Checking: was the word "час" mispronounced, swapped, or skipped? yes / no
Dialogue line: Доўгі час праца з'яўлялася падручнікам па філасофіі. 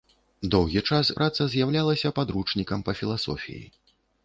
no